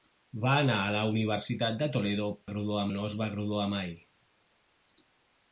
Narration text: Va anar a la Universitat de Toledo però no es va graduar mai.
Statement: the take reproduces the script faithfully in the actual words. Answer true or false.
false